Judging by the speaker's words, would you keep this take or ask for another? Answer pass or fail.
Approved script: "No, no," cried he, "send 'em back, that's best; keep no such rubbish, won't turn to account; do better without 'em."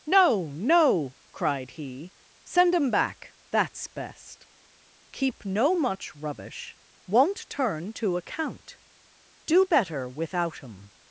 fail